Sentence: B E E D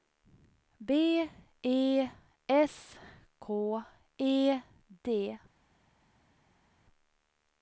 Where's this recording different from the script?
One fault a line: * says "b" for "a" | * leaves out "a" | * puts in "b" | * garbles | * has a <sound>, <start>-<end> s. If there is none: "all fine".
* puts in "S K"